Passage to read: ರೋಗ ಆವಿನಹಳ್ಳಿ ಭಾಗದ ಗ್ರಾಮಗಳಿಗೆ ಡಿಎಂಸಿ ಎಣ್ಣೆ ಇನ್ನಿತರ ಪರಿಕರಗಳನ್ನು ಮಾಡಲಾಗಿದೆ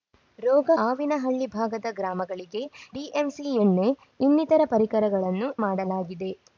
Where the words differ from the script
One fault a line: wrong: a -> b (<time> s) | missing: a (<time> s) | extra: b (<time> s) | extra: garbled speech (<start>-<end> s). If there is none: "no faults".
no faults